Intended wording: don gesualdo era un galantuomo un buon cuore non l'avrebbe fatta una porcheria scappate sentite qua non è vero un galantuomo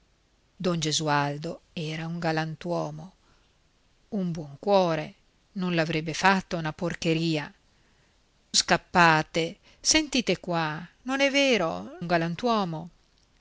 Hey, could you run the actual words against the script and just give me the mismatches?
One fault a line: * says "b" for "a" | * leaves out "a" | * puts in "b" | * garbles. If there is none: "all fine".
all fine